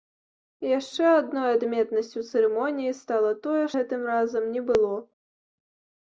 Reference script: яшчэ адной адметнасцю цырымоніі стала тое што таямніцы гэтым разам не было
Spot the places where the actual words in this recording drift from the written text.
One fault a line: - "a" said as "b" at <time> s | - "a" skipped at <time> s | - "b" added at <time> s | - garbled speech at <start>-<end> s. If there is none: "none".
- "што таямніцы" skipped at 3.6 s